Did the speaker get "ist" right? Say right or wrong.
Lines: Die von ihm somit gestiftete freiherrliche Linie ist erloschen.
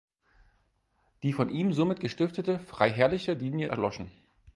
wrong